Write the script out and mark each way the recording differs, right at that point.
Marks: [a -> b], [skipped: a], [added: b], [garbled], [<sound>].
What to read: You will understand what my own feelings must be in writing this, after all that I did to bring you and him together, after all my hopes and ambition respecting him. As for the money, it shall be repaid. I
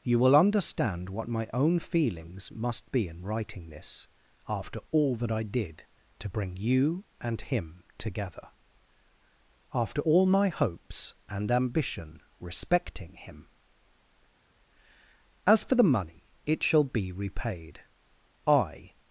You will understand what my own feelings must be in writing this, after all that I did to bring you and him together, after all my hopes and ambition respecting him. As for the money, it shall be repaid. I